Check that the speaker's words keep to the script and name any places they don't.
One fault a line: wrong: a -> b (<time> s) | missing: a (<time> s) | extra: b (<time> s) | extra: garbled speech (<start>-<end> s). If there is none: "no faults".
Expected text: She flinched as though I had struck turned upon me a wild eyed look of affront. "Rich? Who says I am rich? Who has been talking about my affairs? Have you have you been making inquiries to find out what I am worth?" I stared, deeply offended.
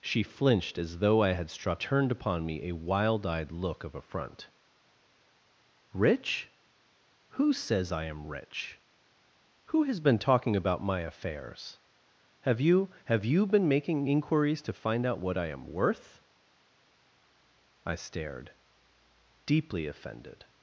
no faults